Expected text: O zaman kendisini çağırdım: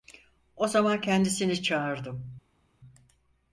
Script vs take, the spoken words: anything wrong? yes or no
no